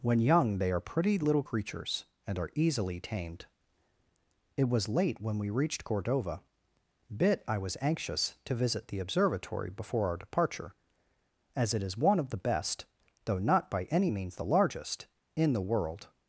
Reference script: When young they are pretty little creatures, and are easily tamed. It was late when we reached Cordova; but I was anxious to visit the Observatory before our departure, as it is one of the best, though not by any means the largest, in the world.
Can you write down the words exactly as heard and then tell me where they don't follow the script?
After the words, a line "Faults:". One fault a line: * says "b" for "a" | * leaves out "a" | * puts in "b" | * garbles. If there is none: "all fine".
When young they are pretty little creatures, and are easily tamed. It was late when we reached Cordova; bit I was anxious to visit the Observatory before our departure, as it is one of the best, though not by any means the largest, in the world.
Faults:
* says "bit" for "but"